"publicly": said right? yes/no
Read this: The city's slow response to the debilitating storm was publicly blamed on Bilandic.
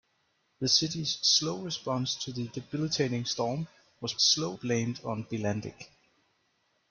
no